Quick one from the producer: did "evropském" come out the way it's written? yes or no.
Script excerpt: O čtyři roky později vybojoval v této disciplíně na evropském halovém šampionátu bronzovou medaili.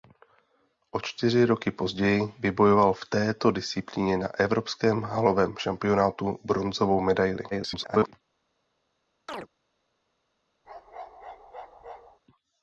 yes